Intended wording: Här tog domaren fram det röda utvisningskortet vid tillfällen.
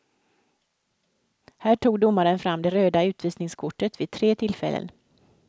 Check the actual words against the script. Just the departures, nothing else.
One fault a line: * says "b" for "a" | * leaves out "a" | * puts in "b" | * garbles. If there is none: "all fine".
* puts in "tre"